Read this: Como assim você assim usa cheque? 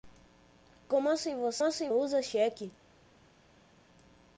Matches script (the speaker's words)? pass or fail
pass